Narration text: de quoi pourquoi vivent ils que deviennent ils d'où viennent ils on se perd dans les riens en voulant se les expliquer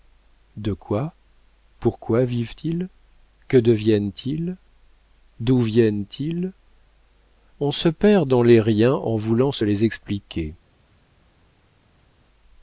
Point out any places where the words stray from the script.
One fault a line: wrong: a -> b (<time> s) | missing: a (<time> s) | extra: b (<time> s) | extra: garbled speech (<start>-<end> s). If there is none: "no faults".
no faults